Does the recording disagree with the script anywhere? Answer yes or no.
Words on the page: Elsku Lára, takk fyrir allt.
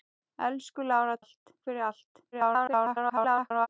yes